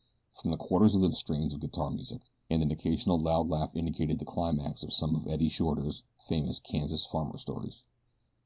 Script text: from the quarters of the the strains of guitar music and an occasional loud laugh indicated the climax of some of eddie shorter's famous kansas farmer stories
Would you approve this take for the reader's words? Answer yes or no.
yes